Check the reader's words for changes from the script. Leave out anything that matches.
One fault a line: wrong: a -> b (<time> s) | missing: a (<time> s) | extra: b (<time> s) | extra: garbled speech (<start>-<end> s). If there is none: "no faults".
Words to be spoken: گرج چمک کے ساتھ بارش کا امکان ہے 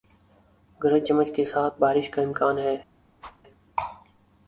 no faults